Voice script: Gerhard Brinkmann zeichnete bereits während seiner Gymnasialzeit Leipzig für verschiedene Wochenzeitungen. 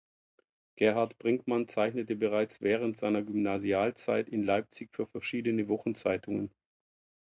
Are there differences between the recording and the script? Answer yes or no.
yes